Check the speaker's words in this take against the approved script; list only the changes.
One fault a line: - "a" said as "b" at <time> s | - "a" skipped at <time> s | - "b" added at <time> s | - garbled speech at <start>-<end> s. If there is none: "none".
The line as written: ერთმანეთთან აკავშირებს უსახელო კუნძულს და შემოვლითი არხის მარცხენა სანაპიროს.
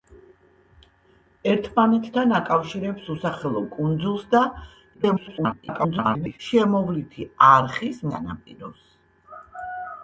- garbled speech at 4.9-6.4 s
- "მარცხენა" skipped at 8.0 s